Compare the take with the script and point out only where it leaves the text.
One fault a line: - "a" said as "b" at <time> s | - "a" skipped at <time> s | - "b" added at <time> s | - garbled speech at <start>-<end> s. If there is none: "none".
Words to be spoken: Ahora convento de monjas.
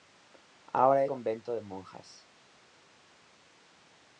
none